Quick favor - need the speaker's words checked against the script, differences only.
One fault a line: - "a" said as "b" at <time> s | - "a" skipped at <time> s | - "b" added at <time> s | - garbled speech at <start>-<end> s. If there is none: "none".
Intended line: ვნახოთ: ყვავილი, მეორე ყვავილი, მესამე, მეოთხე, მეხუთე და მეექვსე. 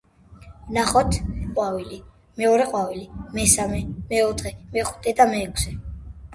none